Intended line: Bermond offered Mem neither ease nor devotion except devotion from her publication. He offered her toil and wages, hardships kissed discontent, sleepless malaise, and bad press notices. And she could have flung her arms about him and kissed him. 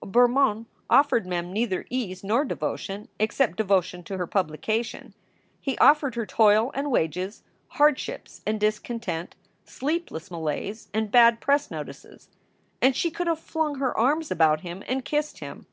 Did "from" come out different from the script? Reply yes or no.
yes